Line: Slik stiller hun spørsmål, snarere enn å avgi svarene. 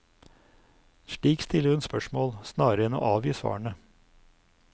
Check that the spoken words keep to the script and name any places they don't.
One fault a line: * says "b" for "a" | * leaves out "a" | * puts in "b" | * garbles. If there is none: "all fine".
all fine